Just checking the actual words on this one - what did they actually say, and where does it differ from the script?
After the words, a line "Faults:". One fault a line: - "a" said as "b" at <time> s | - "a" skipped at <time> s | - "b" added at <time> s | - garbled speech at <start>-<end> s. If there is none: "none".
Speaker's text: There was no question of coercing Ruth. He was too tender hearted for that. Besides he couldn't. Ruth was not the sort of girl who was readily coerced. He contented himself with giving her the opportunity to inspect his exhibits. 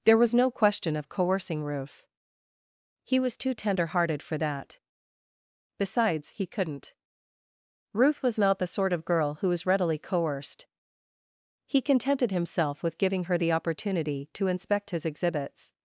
There was no question of coercing Ruth. He was too tender hearted for that. Besides he couldn't. Ruth was not the sort of girl who was readily coerced. He contented himself with giving her the opportunity to inspect his exhibits.
Faults:
none